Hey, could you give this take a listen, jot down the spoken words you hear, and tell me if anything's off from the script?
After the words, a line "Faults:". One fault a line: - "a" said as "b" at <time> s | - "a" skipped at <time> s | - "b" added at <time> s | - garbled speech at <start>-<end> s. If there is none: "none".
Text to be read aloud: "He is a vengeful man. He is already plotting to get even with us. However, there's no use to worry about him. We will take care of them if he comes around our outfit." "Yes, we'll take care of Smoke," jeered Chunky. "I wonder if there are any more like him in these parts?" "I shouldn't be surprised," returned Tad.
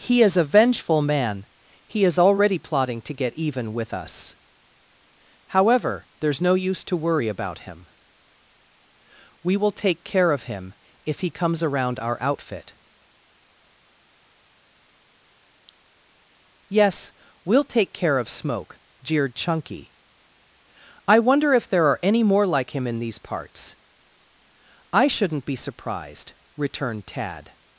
"He is a vengeful man. He is already plotting to get even with us. However, there's no use to worry about him. We will take care of him if he comes around our outfit." "Yes, we'll take care of Smoke," jeered Chunky. "I wonder if there are any more like him in these parts?" "I shouldn't be surprised," returned Tad.
Faults:
- "them" said as "him" at 10.4 s